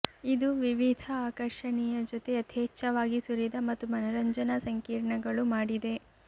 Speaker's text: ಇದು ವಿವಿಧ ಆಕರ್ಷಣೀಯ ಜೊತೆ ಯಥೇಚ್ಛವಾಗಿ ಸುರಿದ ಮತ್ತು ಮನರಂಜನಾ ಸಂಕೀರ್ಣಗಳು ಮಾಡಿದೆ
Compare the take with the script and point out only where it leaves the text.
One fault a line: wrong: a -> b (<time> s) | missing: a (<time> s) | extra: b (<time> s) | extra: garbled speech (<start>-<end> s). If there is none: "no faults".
no faults